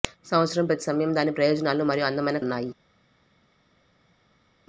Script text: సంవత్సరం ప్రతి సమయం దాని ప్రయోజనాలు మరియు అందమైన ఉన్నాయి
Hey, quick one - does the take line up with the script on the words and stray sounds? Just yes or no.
yes